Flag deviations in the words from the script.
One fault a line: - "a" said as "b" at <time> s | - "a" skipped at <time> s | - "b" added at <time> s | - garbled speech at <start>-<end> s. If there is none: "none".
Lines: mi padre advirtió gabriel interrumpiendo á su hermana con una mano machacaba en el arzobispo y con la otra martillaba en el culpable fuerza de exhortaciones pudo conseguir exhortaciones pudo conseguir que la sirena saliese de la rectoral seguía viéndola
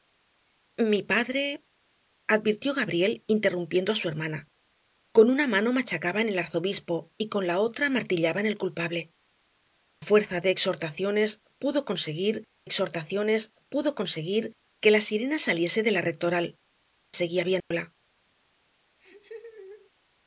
none